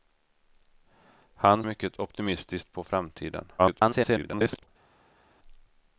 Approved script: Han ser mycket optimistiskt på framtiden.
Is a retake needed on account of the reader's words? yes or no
yes